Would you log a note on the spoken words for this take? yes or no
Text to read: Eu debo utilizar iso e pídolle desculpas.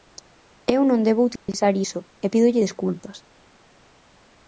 yes